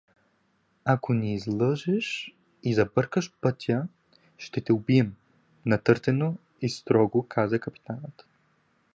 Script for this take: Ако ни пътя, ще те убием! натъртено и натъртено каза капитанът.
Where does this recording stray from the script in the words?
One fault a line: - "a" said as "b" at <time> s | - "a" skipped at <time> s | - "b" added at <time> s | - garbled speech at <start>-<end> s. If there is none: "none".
- "излъжеш и забъркаш" added at 1.3 s
- "натъртено" said as "строго" at 6.7 s